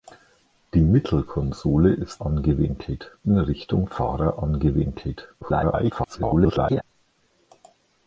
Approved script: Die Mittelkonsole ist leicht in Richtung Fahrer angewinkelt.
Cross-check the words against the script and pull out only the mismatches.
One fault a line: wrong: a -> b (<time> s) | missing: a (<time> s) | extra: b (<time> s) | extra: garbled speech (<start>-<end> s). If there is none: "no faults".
wrong: leicht -> angewinkelt (2.2 s)
extra: garbled speech (5.4-6.8 s)